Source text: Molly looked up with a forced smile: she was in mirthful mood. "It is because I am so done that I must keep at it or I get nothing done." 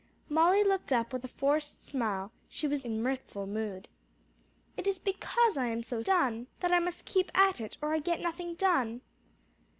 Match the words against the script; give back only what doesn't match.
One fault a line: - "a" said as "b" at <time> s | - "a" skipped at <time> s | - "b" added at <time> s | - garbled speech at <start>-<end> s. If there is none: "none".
none